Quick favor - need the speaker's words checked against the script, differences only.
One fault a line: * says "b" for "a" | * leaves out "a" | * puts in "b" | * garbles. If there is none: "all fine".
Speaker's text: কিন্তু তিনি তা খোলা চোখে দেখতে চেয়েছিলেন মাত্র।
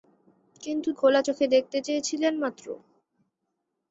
* leaves out "তিনি তা"